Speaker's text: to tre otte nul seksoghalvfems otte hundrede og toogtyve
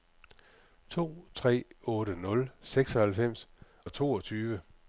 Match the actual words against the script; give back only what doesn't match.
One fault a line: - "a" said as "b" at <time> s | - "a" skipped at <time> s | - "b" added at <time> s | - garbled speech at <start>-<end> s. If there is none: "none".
- "otte hundrede" skipped at 3.5 s